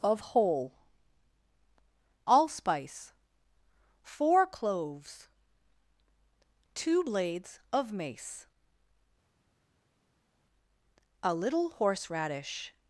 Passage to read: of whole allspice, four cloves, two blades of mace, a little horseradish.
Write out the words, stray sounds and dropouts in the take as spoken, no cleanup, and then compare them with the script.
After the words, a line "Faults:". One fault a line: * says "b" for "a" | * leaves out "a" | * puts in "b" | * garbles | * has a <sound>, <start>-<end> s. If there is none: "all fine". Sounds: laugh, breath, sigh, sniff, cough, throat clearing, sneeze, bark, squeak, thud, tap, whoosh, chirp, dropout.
of whole allspice, four cloves, two blades of mace, a little horseradish.
Faults:
all fine